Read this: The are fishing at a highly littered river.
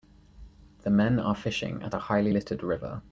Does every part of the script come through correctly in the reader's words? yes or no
no